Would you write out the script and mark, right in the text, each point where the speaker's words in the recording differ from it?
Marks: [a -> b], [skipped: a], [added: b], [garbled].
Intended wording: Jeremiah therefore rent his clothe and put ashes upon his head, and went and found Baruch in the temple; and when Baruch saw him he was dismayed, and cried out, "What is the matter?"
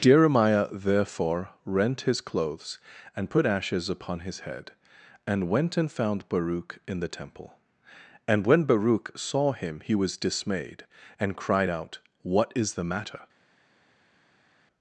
Jeremiah therefore rent his [clothe -> clothes] and put ashes upon his head, and went and found Baruch in the temple; and when Baruch saw him he was dismayed, and cried out, "What is the matter?"